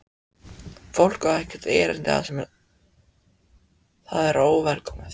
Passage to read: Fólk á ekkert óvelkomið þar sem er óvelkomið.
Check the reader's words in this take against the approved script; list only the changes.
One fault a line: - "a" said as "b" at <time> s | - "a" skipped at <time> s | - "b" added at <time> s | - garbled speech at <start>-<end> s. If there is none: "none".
- "óvelkomið" said as "erindi" at 1.8 s
- "það" added at 4.1 s